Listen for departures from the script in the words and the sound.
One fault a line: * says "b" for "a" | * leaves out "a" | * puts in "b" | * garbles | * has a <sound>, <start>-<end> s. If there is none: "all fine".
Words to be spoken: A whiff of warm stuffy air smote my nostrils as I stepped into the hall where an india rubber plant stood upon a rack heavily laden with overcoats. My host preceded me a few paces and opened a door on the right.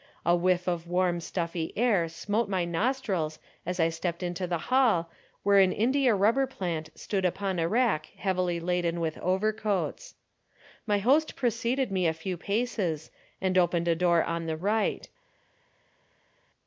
all fine